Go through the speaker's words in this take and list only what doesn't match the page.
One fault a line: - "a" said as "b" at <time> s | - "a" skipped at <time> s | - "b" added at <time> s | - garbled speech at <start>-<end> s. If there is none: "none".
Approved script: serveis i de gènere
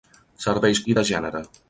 none